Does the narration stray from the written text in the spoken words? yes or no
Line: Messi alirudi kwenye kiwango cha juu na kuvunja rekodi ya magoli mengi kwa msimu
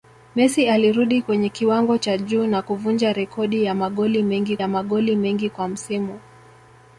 yes